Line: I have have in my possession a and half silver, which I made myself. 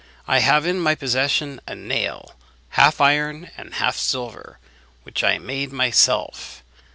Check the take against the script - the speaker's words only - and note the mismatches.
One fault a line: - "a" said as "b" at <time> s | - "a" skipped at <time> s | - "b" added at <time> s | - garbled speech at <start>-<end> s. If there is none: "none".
- "have" skipped at 0.7 s
- "nail half iron" added at 1.7 s